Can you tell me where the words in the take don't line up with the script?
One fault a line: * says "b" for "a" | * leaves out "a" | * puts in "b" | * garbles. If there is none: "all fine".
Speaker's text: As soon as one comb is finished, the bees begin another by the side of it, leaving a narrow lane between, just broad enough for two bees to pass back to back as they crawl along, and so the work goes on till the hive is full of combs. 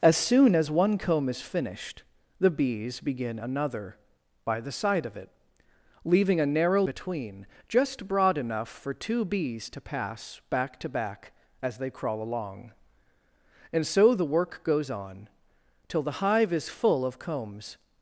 * leaves out "lane"